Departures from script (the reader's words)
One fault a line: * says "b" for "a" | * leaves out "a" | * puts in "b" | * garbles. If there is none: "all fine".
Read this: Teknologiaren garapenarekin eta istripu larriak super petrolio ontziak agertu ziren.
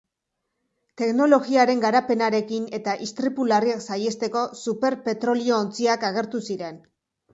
* puts in "saihesteko"